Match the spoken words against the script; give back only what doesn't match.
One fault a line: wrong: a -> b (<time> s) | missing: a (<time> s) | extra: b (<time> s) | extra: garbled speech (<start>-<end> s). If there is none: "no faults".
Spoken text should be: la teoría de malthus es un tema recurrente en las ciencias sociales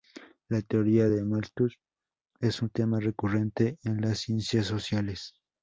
no faults